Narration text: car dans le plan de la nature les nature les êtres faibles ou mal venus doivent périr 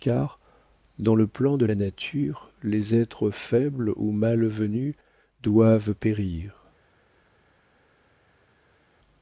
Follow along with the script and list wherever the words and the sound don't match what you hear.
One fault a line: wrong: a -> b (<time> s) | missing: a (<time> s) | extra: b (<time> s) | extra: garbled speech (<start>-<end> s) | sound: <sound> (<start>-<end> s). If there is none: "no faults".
missing: nature les (2.9 s)